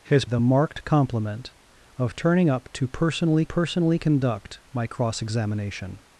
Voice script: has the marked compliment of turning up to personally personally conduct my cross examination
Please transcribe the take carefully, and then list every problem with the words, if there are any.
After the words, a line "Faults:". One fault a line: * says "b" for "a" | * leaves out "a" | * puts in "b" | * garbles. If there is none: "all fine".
has the marked compliment of turning up to personally personally conduct my cross examination
Faults:
all fine